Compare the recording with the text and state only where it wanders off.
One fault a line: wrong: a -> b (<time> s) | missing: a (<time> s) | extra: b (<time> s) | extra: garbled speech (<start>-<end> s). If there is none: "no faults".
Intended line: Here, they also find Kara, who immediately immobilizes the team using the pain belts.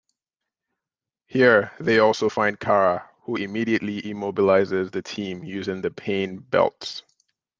no faults